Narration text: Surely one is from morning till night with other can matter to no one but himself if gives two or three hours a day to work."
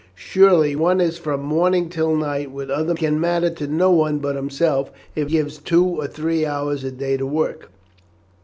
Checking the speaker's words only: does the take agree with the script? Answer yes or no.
yes